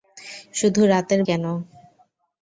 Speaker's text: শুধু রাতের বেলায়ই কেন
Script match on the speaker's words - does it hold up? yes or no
no